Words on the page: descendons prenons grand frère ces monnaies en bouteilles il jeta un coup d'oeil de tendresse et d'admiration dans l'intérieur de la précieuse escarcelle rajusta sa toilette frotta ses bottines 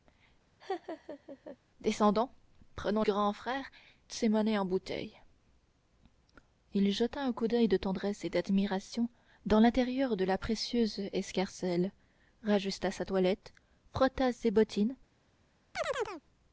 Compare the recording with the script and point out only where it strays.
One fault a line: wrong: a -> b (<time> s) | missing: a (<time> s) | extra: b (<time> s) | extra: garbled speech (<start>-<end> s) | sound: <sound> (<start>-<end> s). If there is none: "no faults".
sound: laugh (0.6-1.6 s)
sound: chirp (15.7-16.2 s)